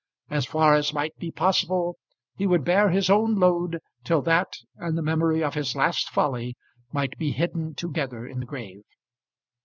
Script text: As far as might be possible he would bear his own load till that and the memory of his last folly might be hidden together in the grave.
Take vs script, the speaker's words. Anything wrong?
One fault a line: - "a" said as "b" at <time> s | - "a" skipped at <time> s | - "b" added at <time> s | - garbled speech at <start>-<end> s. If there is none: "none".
none